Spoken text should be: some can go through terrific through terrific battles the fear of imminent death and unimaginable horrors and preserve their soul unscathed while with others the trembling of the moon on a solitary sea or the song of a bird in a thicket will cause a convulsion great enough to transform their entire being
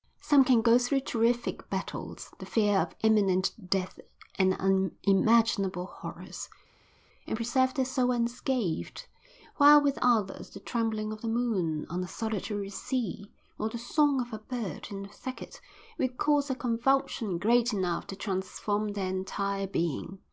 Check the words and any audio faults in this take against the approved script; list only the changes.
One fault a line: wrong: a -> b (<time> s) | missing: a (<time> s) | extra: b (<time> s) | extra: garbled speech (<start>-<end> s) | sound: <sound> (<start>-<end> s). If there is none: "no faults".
missing: through terrific (1.7 s)